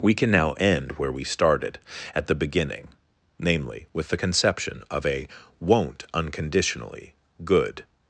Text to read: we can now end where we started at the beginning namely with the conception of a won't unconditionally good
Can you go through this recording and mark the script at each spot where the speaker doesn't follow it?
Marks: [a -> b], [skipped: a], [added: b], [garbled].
we can now end where we started at the beginning namely with the conception of a won't unconditionally good